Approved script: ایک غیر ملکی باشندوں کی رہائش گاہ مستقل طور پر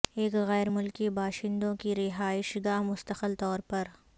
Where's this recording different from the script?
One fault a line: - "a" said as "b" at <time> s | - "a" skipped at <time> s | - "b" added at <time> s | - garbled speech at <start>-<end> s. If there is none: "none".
none